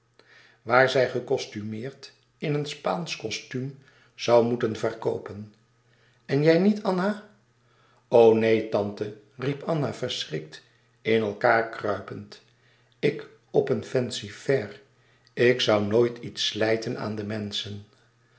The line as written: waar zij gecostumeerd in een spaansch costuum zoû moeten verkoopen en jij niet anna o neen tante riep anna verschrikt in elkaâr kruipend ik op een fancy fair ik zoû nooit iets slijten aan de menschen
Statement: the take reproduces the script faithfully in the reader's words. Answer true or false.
true